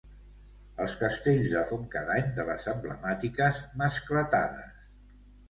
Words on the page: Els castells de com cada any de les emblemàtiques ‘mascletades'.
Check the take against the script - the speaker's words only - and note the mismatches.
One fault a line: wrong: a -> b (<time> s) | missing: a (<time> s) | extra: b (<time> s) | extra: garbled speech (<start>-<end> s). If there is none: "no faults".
no faults